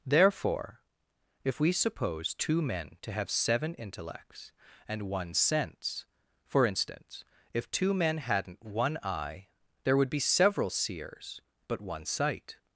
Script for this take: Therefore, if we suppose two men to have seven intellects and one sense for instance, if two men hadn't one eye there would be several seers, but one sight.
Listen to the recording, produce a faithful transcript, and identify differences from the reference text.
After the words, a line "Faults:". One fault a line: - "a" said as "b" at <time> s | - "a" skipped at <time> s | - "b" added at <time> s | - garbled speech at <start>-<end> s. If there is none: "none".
Therefore, if we suppose two men to have seven intellects and one sense for instance, if two men hadn't one eye there would be several seers, but one sight.
Faults:
none